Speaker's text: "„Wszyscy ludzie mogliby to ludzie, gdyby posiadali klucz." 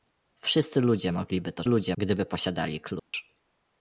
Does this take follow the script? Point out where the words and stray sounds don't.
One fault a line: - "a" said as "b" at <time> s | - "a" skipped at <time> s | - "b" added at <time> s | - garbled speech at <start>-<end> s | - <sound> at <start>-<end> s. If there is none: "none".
- dropout at 3.0-3.1 s